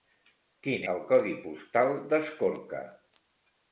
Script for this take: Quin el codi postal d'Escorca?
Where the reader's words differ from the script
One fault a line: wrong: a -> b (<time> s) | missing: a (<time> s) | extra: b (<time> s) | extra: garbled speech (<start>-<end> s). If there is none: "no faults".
no faults